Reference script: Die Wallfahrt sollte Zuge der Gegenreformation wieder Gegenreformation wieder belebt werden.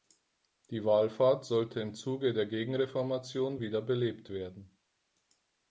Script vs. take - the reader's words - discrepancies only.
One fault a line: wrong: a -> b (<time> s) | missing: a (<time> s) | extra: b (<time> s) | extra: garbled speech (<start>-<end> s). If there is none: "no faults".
extra: im (1.8 s)
missing: Gegenreformation wieder (3.8 s)